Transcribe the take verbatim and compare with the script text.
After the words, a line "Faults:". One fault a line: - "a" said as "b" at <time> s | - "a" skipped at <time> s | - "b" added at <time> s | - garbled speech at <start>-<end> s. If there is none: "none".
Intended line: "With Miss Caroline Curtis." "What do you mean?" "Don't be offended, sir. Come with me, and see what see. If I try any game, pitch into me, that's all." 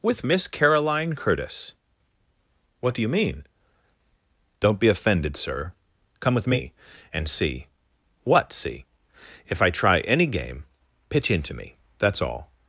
"With Miss Caroline Curtis." "What do you mean?" "Don't be offended, sir. Come with me, and see what see. If I try any game, pitch into me, that's all."
Faults:
none